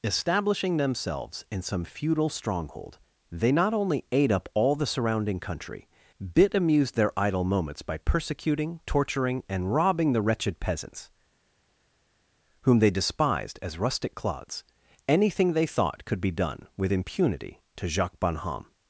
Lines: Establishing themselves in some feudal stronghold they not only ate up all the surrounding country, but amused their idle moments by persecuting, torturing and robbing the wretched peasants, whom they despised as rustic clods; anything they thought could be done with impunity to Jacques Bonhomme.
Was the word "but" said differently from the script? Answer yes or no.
yes